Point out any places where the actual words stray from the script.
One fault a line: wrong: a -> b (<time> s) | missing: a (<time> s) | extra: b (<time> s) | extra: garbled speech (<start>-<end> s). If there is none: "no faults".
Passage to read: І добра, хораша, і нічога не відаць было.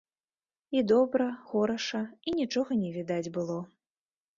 no faults